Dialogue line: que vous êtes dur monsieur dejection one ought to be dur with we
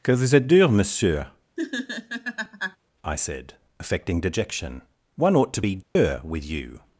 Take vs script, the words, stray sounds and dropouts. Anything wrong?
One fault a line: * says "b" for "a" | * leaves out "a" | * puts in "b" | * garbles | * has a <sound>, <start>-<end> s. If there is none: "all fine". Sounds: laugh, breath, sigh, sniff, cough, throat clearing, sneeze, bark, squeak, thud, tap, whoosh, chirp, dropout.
* has a laugh, 1.6-2.8 s
* puts in "i said affecting"
* has a dropout, 5.8-6.0 s
* says "you" for "we"